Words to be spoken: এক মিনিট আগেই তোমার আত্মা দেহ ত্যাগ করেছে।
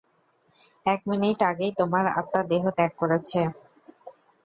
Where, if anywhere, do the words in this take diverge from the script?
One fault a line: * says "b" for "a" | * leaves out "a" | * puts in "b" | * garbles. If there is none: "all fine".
all fine